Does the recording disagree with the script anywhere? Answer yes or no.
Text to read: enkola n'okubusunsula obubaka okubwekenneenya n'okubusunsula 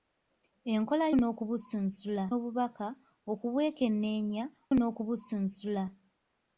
no